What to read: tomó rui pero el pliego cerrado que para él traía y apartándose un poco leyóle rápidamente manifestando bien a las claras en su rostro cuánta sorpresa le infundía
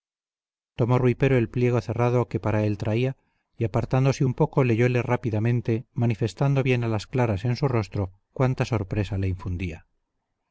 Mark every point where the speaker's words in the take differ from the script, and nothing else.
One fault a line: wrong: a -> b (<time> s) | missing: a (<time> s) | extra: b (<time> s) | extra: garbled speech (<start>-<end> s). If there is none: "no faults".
no faults